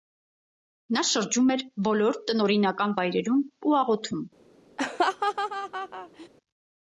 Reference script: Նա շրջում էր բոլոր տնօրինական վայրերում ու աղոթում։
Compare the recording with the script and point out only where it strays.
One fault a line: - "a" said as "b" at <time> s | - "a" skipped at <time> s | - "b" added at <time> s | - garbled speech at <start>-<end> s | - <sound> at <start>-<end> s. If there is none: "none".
- laugh at 4.8-6.3 s